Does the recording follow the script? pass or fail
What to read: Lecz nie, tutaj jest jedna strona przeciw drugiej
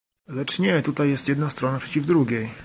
pass